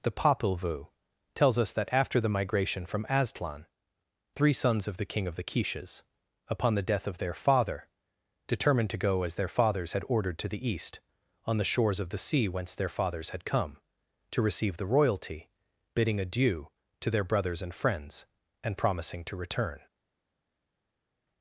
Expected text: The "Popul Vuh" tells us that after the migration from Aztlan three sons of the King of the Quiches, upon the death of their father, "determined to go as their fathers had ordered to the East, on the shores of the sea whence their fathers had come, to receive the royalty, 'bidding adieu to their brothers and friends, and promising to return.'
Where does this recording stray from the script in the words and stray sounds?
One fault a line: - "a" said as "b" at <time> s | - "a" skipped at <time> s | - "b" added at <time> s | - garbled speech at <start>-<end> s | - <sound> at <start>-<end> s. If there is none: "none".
none